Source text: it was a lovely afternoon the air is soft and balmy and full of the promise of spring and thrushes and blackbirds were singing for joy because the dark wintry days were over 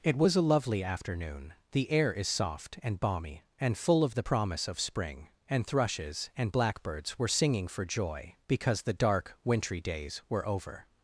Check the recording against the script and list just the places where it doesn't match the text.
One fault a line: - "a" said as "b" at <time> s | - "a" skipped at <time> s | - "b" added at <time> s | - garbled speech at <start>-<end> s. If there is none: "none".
none